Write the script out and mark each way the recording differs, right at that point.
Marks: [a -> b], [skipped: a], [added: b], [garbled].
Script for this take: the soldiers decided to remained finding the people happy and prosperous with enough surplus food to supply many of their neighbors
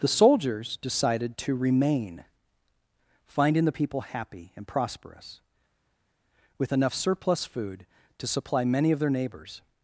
the soldiers decided to [remained -> remain] finding the people happy and prosperous with enough surplus food to supply many of their neighbors